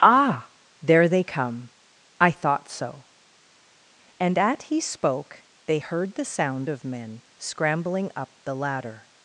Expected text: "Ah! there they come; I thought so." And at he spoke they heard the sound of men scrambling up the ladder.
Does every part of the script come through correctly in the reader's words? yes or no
yes